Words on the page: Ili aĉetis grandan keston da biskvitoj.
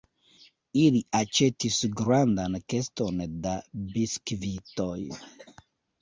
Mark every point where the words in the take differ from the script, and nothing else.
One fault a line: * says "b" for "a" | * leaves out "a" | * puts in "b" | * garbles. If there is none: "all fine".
all fine